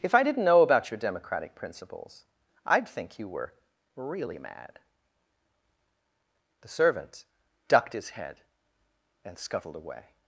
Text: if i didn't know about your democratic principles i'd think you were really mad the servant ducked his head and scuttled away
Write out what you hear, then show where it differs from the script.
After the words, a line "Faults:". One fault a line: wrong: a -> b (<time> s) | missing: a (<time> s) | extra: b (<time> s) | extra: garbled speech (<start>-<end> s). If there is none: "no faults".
if i didn't know about your democratic principles i'd think you were really mad the servant ducked his head and scuttled away
Faults:
no faults